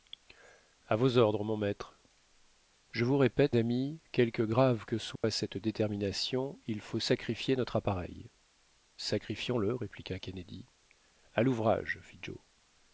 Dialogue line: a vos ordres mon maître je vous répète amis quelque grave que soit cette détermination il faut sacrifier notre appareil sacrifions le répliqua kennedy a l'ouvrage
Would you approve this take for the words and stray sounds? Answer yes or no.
no